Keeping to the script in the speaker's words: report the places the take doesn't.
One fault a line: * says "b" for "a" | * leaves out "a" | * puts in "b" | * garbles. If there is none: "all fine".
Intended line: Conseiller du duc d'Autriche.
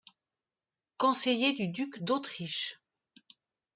all fine